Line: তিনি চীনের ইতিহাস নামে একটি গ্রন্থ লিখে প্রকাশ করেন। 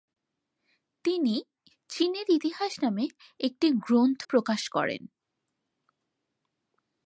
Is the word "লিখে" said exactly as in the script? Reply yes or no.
no